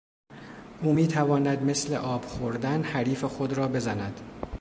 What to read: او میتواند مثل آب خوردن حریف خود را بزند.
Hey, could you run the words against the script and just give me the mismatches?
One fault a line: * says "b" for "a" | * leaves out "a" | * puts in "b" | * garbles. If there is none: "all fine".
all fine